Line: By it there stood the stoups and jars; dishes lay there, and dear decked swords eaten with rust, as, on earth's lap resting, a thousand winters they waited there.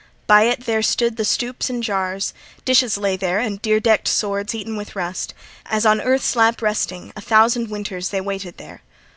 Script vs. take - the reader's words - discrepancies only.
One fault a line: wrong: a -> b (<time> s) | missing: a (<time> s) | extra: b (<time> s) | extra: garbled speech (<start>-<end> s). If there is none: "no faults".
no faults